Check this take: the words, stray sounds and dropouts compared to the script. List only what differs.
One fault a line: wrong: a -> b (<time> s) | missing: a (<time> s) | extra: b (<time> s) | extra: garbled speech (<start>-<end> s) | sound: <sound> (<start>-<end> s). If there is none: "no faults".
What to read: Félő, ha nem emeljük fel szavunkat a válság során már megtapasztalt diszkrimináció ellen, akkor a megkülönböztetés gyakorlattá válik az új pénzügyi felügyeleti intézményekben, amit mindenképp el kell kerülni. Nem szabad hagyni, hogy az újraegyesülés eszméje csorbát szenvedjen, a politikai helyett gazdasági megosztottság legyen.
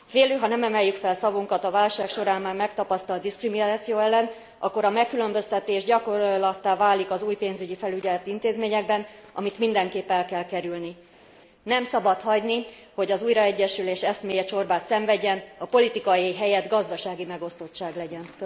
no faults